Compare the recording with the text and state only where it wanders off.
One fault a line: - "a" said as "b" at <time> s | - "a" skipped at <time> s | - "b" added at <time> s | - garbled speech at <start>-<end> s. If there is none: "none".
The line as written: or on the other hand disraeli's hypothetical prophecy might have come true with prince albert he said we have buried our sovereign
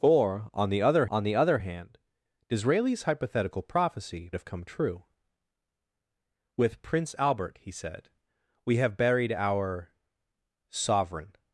- "on the other" added at 1.1 s
- "might" skipped at 4.3 s